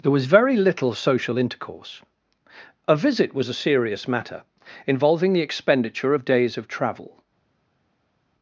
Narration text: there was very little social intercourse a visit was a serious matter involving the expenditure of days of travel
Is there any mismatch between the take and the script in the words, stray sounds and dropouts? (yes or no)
no